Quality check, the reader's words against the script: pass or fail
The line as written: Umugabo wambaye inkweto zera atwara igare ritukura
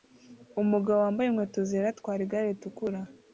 pass